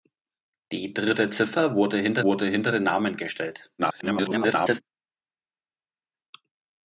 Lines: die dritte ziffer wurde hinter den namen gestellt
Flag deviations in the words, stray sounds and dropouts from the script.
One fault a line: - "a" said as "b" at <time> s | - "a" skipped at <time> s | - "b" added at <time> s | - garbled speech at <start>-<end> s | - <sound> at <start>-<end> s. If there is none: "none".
- "wurde hinter" added at 2.2 s
- garbled speech at 3.8-4.8 s